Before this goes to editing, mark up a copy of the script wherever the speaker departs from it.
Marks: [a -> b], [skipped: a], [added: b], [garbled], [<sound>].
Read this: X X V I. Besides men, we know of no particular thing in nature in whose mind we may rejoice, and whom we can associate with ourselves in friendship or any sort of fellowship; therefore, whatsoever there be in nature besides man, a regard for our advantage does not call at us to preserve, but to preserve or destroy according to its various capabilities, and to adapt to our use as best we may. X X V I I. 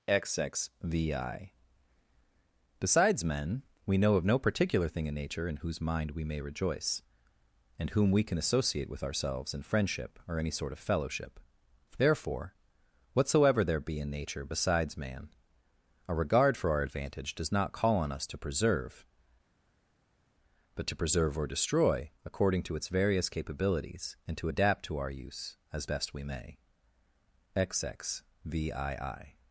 X X V I. Besides men, we know of no particular thing in nature in whose mind we may rejoice, and whom we can associate with ourselves in friendship or any sort of fellowship; therefore, whatsoever there be in nature besides man, a regard for our advantage does not call [at -> on] us to preserve, but to preserve or destroy according to its various capabilities, and to adapt to our use as best we may. X X V I I.